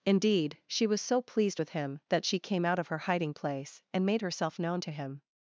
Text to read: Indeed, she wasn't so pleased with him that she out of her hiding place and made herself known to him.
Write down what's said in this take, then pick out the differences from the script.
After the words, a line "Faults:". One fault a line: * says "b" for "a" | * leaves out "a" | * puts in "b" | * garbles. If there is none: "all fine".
Indeed, she was so pleased with him that she came out of her hiding place and made herself known to him.
Faults:
* says "was" for "wasn't"
* puts in "came"